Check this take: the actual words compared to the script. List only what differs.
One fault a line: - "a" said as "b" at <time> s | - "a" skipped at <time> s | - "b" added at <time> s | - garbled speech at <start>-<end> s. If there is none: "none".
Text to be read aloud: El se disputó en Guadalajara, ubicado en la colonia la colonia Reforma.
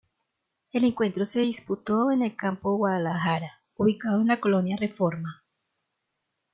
- "encuentro" added at 0.8 s
- "el Campo" added at 2.2 s
- "la colonia" skipped at 4.8 s